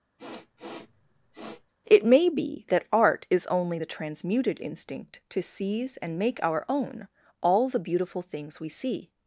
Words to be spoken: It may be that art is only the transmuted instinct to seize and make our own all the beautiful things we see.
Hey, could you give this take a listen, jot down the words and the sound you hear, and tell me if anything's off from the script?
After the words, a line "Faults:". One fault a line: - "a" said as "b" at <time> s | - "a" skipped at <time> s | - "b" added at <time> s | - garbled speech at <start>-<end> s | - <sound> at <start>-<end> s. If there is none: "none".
It may be that art is only the transmuted instinct to seize and make our own all the beautiful things we see.
Faults:
- sniff at 0.2-1.7 s